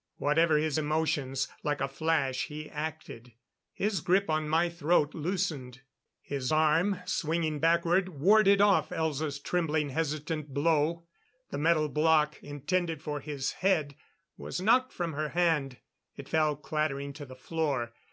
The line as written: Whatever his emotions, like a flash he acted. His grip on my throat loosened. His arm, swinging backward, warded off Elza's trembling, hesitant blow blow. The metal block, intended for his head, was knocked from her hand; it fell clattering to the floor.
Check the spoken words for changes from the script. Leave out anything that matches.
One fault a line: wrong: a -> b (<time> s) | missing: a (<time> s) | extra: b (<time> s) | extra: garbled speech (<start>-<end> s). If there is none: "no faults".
missing: blow (11.1 s)